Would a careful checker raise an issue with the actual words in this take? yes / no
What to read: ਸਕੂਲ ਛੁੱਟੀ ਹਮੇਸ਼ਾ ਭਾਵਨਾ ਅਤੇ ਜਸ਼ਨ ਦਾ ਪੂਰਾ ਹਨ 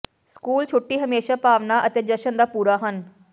no